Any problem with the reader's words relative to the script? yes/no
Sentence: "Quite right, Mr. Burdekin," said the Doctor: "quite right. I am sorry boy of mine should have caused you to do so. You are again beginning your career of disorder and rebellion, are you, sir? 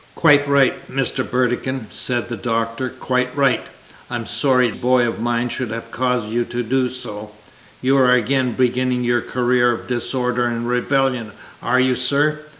no